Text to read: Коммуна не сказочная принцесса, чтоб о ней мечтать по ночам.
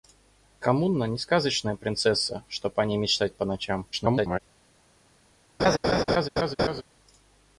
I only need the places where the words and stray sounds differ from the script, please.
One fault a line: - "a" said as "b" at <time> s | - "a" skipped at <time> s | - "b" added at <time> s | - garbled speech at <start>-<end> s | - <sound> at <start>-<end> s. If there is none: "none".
- garbled speech at 3.9-4.4 s
- laugh at 5.6-6.8 s